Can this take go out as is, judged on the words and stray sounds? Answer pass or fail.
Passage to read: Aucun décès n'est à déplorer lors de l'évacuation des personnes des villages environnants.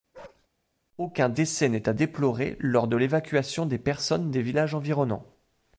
fail